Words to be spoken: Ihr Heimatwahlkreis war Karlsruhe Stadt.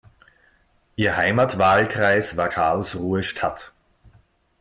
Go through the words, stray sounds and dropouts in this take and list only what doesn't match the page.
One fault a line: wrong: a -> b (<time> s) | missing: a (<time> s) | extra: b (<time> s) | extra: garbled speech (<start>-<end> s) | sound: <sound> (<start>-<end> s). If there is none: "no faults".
no faults